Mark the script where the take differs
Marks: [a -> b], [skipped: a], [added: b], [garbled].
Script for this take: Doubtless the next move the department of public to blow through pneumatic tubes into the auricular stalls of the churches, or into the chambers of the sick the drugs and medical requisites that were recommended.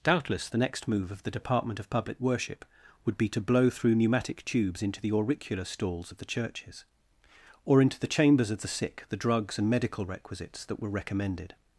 Doubtless the next move [added: of] the department of public [added: worship would be] to blow through pneumatic tubes into the auricular stalls of the churches, or into the chambers of the sick the drugs and medical requisites that were recommended.